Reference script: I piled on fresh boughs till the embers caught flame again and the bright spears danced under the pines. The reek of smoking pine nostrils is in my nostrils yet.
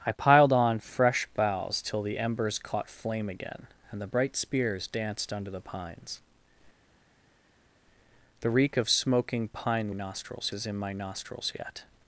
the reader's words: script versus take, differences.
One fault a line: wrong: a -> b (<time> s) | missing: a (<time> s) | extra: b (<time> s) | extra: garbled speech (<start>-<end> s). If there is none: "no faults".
no faults